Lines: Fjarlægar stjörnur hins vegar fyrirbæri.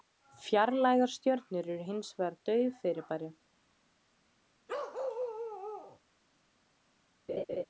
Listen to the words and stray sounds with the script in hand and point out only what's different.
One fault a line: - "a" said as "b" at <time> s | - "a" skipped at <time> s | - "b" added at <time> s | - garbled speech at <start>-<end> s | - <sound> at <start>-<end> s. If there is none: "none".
- "eru" added at 1.8 s
- "dauf" added at 2.5 s
- bark at 4.7-6.0 s
- laugh at 7.3-7.7 s